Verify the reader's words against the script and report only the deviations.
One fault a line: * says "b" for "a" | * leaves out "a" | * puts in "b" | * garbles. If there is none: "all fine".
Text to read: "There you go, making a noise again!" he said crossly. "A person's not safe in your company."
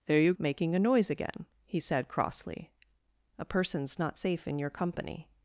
* leaves out "go"